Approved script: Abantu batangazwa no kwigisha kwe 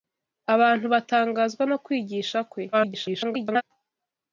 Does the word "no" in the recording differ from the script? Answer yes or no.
no